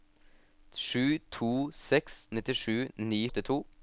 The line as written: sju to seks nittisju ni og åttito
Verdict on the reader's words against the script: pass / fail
pass